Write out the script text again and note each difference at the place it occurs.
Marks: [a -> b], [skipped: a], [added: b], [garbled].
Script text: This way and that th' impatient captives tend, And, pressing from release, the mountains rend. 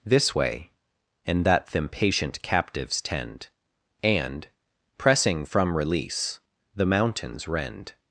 This way and that th' impatient captives tend, And, pressing from release, the mountains rend.